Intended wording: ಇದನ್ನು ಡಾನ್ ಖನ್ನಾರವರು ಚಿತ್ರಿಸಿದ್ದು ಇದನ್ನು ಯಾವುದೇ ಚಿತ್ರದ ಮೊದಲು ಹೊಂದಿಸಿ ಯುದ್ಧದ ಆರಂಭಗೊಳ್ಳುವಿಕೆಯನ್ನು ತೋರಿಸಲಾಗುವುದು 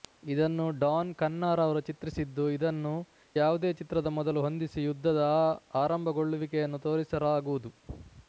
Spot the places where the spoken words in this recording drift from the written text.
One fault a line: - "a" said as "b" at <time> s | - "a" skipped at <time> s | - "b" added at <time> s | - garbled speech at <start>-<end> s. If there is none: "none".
none